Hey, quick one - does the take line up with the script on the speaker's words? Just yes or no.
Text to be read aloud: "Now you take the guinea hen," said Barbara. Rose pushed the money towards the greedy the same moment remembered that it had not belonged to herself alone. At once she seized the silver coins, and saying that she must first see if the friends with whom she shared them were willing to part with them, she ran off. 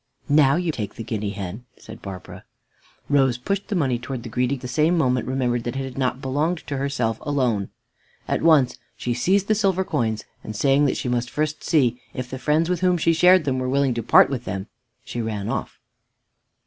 yes